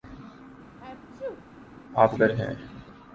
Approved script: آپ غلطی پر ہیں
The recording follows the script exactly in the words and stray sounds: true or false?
false